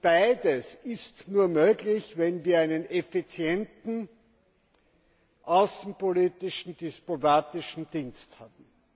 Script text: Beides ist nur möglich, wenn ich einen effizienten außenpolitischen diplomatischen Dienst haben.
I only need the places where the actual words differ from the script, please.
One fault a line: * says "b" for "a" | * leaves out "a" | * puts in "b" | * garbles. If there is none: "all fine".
* says "wir" for "ich"